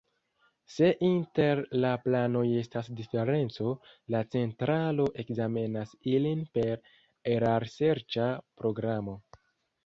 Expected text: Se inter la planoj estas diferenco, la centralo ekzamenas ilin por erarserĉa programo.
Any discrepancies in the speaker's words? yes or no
yes